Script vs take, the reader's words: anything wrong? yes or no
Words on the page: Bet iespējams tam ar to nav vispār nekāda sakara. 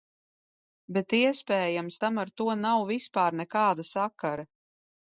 no